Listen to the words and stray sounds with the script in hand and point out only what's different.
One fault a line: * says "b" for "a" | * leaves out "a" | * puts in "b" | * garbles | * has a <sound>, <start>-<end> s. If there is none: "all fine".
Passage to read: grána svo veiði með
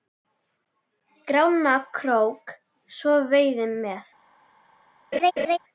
* puts in "krók"
* has a laugh, 5.1-5.6 s